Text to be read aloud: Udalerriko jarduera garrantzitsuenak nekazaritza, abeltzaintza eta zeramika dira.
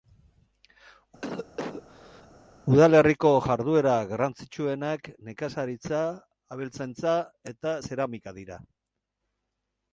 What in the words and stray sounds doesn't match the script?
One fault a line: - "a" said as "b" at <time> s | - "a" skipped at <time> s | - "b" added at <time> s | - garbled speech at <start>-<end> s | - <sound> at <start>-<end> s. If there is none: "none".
- cough at 1.2-2.3 s